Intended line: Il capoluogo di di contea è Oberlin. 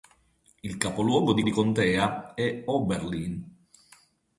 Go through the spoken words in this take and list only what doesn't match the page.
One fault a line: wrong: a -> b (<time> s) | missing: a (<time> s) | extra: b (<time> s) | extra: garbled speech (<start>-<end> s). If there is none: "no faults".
no faults